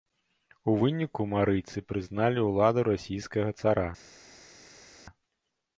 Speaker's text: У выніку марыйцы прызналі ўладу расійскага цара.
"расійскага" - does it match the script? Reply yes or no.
yes